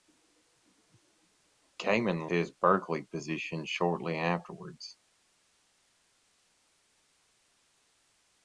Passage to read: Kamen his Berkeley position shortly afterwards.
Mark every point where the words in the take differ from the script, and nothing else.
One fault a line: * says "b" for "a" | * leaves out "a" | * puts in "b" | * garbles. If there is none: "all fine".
all fine